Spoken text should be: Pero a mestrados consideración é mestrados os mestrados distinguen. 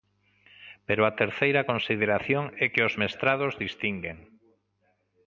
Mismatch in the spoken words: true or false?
true